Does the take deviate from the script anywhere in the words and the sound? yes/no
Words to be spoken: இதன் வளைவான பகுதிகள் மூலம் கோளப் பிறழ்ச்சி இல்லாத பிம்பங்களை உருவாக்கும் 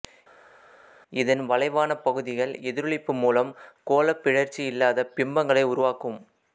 yes